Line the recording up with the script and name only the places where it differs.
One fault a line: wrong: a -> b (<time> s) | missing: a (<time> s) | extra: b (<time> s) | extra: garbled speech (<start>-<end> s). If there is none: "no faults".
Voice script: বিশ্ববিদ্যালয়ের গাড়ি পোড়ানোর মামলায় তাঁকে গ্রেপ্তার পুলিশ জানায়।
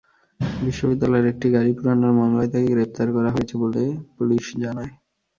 extra: একটি (1.3 s)
extra: করা হয়েছে বলে (3.1 s)